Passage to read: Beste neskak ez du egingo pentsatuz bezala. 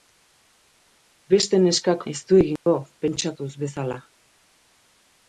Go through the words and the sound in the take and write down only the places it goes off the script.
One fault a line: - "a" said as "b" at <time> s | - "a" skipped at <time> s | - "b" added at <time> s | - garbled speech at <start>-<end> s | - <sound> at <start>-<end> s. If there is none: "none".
- dropout at 2.6-2.7 s